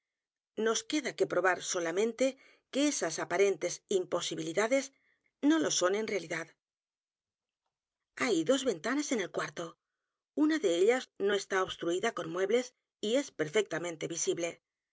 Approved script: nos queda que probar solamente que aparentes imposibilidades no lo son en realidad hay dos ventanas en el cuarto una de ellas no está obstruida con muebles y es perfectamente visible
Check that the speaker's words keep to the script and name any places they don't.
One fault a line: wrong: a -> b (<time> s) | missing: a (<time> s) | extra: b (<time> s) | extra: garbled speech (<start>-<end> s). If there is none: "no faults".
extra: esas (2.9 s)